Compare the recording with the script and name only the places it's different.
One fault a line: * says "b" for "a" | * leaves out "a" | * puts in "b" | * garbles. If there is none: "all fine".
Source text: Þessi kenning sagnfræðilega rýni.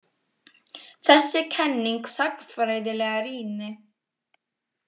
all fine